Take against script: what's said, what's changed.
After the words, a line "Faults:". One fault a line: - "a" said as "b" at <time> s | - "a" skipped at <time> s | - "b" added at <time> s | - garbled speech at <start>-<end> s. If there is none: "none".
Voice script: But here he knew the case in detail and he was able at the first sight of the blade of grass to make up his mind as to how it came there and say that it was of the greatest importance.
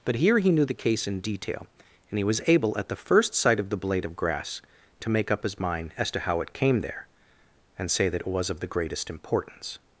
But here he knew the case in detail and he was able at the first sight of the blade of grass to make up his mind as to how it came there and say that it was of the greatest importance.
Faults:
none